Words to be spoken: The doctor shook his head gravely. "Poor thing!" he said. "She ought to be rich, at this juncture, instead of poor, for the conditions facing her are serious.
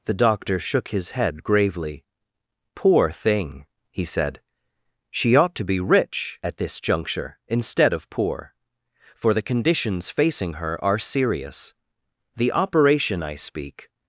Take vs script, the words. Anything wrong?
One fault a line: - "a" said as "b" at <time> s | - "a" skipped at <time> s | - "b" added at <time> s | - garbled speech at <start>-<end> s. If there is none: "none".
- "The operation I speak" added at 12.3 s